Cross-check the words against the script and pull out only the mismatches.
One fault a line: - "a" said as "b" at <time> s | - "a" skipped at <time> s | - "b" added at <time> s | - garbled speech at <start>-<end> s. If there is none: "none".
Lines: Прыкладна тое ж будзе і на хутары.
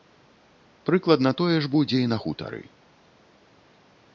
none